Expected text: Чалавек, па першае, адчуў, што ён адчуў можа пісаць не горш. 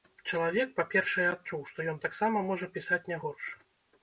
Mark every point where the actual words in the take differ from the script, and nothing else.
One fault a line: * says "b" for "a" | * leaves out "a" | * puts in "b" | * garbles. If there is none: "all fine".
* says "таксама" for "адчуў"